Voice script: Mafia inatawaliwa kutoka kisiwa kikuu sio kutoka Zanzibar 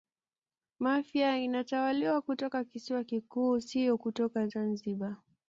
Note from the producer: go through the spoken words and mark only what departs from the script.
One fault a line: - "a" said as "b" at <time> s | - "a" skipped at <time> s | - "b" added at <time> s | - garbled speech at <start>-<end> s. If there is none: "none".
none